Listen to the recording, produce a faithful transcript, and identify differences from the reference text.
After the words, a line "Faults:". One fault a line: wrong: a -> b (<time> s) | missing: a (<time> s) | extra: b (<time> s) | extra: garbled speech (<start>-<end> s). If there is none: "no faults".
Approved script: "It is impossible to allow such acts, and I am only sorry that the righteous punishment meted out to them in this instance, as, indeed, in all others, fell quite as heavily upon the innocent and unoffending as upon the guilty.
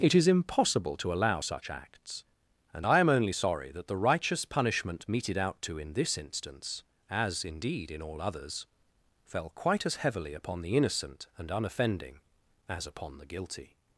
"It is impossible to allow such acts, and I am only sorry that the righteous punishment meted out to in this instance, as, indeed, in all others, fell quite as heavily upon the innocent and unoffending as upon the guilty.
Faults:
missing: them (5.8 s)